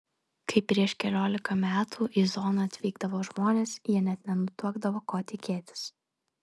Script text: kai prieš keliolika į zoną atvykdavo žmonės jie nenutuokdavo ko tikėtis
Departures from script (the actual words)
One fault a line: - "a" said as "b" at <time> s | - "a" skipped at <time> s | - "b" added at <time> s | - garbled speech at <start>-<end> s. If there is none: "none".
- "metų" added at 1.6 s
- "net" added at 4.1 s